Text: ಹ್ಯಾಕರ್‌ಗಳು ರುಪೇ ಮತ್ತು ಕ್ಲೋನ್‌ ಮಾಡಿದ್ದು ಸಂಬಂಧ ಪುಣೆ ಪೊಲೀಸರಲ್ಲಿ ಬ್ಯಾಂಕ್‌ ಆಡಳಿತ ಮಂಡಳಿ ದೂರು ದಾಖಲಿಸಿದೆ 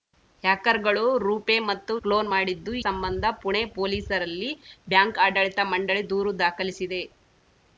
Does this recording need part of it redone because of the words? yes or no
no